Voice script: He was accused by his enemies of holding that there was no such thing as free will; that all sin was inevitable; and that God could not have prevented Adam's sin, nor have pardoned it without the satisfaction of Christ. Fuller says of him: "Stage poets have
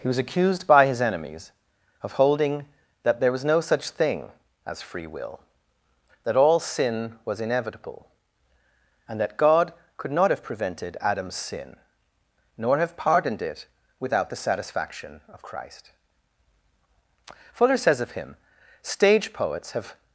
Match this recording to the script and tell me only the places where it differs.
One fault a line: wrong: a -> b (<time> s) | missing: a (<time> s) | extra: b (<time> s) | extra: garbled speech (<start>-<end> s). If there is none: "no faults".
no faults